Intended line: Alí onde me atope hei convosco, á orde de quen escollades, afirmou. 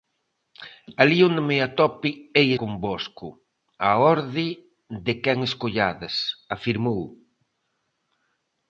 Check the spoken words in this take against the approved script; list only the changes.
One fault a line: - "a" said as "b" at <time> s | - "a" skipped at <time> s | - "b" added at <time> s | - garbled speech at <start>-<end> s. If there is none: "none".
none